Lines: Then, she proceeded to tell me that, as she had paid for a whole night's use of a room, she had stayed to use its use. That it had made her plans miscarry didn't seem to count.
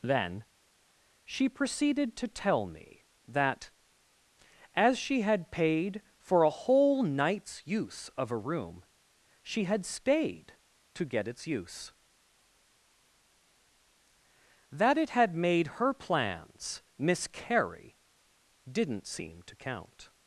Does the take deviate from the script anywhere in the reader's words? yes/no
yes